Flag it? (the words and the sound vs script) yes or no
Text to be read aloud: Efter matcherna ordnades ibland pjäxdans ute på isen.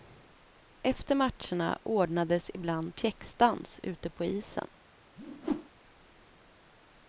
yes